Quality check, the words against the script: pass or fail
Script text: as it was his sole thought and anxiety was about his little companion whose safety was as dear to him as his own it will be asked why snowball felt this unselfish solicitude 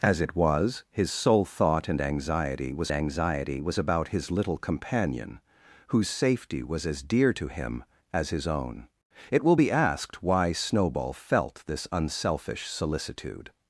fail